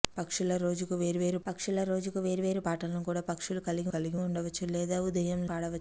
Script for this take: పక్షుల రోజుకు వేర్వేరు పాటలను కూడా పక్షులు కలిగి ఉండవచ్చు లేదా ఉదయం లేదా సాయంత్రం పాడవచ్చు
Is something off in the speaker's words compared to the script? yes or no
yes